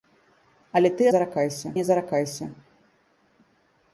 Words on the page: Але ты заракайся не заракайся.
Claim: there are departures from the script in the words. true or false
false